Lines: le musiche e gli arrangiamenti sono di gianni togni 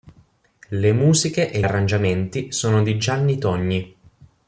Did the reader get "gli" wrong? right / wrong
wrong